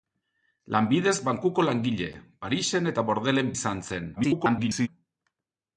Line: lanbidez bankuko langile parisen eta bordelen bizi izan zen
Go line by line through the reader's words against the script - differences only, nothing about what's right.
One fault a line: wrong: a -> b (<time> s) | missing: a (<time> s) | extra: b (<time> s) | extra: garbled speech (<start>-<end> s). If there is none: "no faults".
missing: bizi (3.5 s)
extra: garbled speech (4.2-4.9 s)